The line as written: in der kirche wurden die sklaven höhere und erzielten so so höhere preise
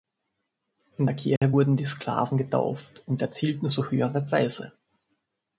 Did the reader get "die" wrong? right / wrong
right